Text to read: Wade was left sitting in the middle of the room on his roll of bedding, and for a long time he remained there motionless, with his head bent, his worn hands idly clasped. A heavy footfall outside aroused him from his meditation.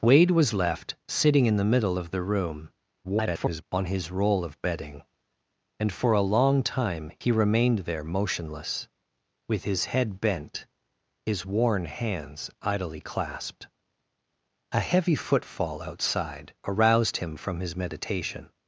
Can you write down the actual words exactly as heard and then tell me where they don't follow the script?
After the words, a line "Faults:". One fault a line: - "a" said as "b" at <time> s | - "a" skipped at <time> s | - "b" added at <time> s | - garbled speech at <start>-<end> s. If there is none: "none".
Wade was left sitting in the middle of the room [garbled] on his roll of bedding, and for a long time he remained there motionless, with his head bent, his worn hands idly clasped. A heavy footfall outside aroused him from his meditation.
Faults:
- garbled speech at 3.0-3.6 s